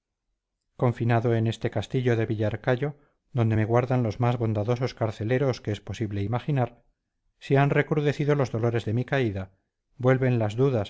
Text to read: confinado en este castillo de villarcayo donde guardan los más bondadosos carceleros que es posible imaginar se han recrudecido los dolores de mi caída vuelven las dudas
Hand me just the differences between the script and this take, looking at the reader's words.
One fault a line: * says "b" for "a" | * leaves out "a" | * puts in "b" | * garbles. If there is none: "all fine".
* puts in "me"